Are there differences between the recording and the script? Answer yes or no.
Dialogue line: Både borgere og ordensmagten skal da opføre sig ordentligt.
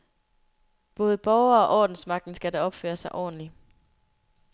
no